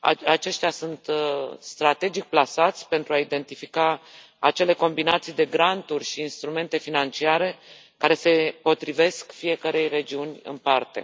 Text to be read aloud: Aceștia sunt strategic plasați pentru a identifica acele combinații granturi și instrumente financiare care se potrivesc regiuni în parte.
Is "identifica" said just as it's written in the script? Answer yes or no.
yes